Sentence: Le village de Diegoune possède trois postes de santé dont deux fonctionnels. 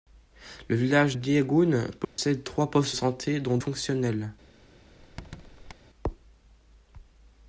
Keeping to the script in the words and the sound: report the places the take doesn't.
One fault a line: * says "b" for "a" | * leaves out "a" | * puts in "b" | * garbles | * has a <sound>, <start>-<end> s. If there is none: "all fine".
* leaves out "de"
* has a dropout, 2.0-2.2 s
* leaves out "de"
* leaves out "deux"
* has a squeak, 5.0-5.7 s